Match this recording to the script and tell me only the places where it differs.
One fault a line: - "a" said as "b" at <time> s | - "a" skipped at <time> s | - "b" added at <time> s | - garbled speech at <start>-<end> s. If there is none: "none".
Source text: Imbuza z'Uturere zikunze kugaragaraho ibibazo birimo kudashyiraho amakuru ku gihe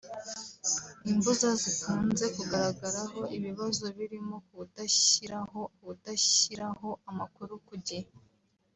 - "z'Uturere" skipped at 1.5 s
- "kudashyiraho" added at 5.8 s